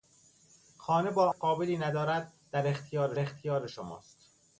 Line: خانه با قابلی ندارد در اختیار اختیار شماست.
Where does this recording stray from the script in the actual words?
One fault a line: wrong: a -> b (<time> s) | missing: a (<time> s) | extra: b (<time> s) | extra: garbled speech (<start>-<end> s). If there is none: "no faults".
no faults